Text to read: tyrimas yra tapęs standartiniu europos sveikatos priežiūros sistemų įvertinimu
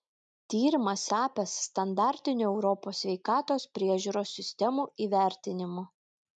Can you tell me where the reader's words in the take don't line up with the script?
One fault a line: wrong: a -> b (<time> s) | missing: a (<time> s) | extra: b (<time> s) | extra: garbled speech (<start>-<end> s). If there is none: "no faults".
missing: yra (1.0 s)